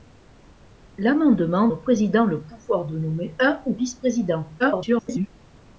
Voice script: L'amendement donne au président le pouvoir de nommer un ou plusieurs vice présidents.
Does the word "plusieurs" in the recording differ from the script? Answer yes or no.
yes